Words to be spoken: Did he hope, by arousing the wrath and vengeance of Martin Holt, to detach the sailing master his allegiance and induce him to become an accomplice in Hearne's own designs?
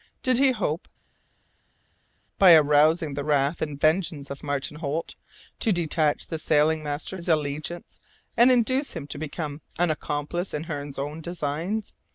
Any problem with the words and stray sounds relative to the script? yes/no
no